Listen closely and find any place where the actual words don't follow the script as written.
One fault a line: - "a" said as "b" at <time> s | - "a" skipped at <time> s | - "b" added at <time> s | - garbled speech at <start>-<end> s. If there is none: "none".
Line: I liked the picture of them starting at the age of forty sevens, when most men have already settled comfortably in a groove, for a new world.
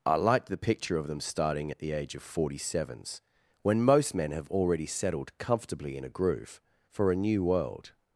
none